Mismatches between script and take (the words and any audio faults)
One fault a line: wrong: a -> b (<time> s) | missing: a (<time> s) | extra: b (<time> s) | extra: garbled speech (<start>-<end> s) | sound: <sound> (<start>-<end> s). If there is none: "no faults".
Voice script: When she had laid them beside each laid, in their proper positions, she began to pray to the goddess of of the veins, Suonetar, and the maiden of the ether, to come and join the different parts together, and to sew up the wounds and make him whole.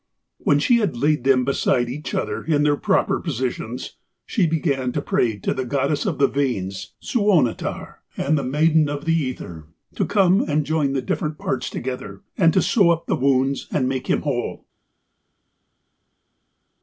wrong: laid -> other (2.1 s)
missing: of (6.2 s)